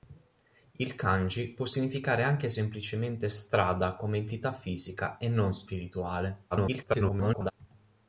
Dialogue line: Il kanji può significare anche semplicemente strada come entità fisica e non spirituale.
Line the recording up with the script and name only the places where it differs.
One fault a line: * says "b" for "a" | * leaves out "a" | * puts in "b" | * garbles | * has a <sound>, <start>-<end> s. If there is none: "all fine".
* garbles